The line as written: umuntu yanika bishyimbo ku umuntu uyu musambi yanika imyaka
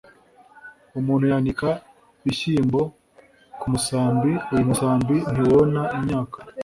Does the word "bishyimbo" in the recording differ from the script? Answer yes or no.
no